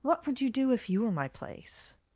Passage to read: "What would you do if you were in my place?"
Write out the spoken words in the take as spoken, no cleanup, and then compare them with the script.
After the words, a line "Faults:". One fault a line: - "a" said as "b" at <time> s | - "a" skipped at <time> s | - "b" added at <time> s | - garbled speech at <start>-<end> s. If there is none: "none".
"What would you do if you were my place?"
Faults:
- "in" skipped at 1.1 s